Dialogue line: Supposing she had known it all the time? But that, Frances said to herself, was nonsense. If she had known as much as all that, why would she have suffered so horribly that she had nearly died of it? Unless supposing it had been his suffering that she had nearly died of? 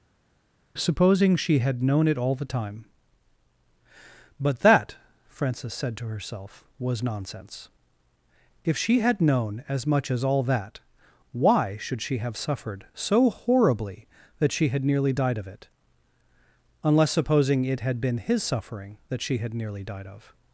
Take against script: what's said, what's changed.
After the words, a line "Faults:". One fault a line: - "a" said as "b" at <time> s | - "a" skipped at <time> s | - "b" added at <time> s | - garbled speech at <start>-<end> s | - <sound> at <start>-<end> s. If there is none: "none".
Supposing she had known it all the time? But that, Frances said to herself, was nonsense. If she had known as much as all that, why should she have suffered so horribly that she had nearly died of it? Unless supposing it had been his suffering that she had nearly died of?
Faults:
- "would" said as "should" at 11.8 s